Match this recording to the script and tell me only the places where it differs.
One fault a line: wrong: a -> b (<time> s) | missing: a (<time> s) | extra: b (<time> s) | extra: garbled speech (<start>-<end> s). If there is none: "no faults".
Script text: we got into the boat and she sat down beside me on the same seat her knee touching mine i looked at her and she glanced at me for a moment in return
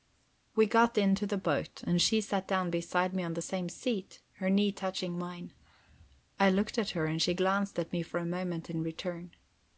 no faults